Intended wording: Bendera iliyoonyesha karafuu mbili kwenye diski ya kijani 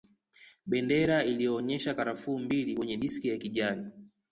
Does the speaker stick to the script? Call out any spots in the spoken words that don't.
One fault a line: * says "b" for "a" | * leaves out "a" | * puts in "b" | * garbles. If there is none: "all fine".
all fine